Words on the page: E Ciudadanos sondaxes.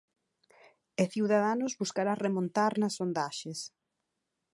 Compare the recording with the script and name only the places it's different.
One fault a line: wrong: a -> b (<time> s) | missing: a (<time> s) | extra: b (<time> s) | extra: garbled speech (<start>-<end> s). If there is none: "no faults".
extra: buscará remontar nas (1.8 s)